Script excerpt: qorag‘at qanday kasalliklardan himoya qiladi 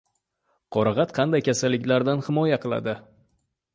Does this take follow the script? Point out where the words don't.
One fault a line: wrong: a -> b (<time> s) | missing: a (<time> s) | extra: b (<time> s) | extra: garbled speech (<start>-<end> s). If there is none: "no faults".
no faults